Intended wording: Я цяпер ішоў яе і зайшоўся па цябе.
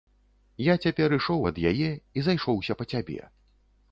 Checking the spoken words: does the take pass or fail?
fail